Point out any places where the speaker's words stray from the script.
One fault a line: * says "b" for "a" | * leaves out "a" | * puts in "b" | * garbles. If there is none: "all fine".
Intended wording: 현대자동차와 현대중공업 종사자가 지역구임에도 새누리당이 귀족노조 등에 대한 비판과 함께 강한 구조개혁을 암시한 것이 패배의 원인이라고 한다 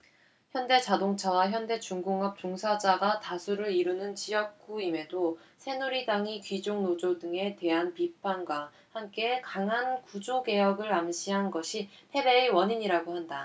* puts in "다수를 이루는"